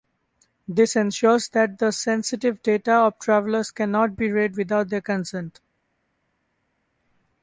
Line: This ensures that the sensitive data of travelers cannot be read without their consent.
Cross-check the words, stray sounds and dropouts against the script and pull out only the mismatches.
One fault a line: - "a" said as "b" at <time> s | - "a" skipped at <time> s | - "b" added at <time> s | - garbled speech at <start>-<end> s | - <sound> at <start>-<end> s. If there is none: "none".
none